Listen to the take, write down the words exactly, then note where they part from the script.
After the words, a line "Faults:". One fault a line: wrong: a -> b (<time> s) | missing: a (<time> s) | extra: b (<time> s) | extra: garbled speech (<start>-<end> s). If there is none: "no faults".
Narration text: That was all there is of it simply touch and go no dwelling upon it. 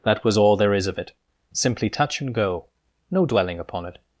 That was all there is of it simply touch and go no dwelling upon it.
Faults:
no faults